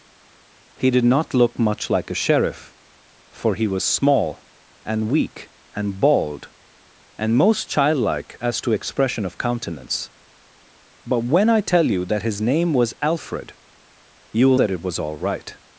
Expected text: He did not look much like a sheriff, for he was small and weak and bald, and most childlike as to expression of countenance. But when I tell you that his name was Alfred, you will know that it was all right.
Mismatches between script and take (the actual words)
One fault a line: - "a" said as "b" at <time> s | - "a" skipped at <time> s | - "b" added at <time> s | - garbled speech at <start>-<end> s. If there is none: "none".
- "know" skipped at 14.6 s